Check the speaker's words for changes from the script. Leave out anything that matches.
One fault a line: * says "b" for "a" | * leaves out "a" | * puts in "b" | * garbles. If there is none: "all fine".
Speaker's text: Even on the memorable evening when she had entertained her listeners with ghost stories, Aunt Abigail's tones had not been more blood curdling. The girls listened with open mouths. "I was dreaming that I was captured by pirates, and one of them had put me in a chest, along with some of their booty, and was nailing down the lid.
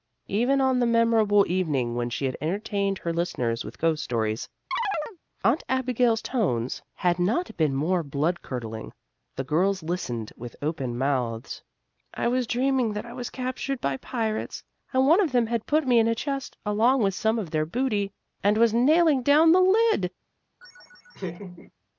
all fine